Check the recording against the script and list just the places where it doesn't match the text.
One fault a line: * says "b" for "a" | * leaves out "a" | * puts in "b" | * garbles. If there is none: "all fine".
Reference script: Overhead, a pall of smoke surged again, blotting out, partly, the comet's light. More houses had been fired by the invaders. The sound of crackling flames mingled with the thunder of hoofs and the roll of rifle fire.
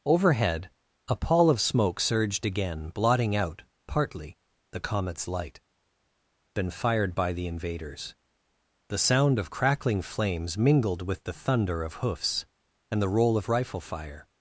* leaves out "More houses had"